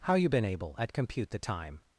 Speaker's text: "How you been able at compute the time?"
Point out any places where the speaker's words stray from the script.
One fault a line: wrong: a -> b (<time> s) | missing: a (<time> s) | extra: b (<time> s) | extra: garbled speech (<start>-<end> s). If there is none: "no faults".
no faults